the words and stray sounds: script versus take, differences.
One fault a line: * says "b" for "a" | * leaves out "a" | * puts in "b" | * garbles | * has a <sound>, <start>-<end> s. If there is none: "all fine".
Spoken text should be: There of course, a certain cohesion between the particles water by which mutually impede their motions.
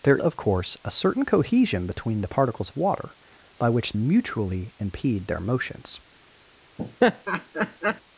* has a laugh, 6.8-8.0 s